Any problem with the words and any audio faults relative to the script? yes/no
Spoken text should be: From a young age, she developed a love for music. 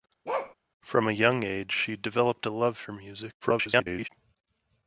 yes